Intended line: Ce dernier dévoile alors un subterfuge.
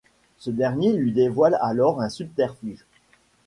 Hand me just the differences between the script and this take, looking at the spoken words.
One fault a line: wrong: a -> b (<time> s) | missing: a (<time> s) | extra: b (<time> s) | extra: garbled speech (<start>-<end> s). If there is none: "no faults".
extra: lui (0.9 s)